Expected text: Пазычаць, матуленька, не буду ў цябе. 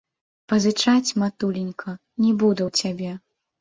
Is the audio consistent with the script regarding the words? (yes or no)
yes